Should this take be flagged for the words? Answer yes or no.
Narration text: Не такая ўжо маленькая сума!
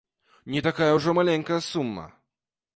no